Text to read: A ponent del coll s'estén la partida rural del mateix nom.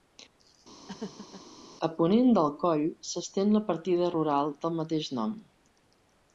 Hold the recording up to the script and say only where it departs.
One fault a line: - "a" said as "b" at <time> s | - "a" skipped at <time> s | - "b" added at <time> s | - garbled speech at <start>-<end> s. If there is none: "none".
none